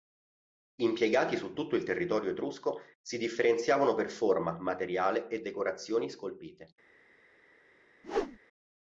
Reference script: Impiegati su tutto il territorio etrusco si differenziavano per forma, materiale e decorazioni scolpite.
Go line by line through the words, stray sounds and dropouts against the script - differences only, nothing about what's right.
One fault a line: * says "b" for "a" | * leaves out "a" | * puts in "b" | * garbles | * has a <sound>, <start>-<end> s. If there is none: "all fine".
* has a whoosh, 8.0-8.4 s